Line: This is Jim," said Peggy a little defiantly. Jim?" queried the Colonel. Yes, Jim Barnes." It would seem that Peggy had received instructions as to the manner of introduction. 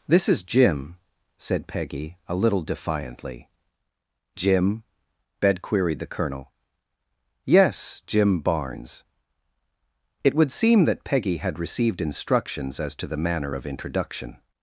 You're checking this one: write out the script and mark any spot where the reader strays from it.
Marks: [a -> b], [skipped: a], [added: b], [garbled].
This is Jim," said Peggy a little defiantly. Jim?" [added: bed] queried the Colonel. Yes, Jim Barnes." It would seem that Peggy had received instructions as to the manner of introduction.